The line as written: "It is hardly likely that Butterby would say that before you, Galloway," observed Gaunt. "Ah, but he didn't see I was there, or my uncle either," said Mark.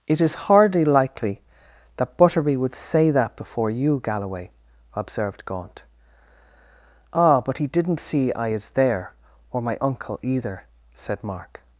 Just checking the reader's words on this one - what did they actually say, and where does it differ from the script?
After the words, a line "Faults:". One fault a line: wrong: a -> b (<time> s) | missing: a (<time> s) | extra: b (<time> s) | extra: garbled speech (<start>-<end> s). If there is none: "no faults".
"It is hardly likely that Butterby would say that before you, Galloway," observed Gaunt. "Ah, but he didn't see I is there, or my uncle either," said Mark.
Faults:
wrong: was -> is (8.5 s)